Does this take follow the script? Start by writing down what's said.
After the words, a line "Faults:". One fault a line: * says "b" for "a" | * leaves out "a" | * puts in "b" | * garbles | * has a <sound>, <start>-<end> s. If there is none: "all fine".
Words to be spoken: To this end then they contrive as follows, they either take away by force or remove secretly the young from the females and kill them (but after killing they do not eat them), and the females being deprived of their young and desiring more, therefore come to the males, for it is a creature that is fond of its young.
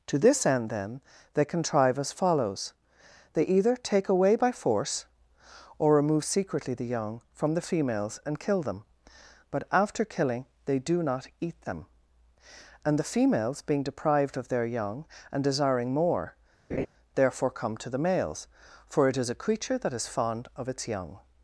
To this end then they contrive as follows, they either take away by force or remove secretly the young from the females and kill them (but after killing they do not eat them), and the females being deprived of their young and desiring more, therefore come to the males, for it is a creature that is fond of its young.
Faults:
* has a laugh, 16.7-16.9 s